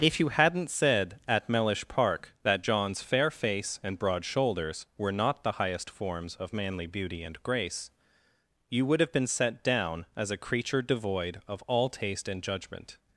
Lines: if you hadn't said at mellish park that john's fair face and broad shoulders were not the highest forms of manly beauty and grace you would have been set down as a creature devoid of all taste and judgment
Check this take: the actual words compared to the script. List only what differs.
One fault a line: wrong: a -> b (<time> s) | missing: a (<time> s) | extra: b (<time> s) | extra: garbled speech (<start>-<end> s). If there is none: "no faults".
no faults